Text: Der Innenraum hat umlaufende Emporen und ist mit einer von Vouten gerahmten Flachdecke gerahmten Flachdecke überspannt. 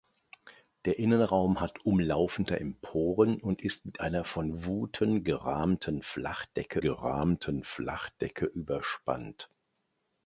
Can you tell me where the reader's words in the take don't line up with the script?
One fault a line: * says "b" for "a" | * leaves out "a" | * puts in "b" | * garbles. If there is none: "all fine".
all fine